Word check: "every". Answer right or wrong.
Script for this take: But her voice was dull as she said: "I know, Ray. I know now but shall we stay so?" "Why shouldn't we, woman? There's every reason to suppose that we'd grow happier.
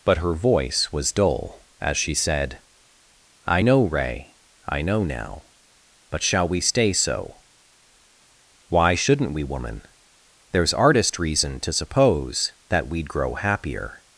wrong